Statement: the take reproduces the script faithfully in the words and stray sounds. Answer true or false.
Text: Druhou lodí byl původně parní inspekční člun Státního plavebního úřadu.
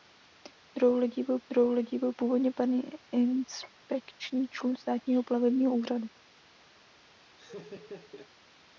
false